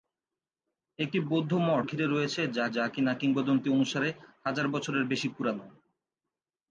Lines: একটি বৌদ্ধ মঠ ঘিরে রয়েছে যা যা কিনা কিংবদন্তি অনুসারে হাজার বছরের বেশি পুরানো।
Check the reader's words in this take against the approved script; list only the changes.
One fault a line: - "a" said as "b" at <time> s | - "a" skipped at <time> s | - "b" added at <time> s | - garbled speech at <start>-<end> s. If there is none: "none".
none